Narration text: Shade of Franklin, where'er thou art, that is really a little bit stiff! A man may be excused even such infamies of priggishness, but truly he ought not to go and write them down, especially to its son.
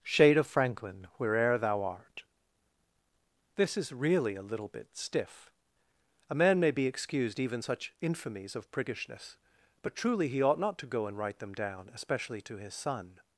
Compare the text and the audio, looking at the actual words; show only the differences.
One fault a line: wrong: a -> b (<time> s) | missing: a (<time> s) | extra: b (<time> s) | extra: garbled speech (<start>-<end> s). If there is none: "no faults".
wrong: that -> this (3.6 s)
wrong: its -> his (12.6 s)